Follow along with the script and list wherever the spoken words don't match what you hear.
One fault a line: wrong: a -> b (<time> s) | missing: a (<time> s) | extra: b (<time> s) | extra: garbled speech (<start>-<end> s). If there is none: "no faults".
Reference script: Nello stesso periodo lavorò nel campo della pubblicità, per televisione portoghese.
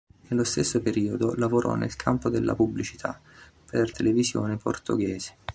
no faults